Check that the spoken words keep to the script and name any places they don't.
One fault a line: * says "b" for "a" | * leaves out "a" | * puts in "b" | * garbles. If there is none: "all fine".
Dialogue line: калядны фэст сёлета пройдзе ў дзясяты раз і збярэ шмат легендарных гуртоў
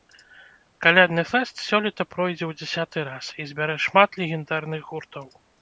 all fine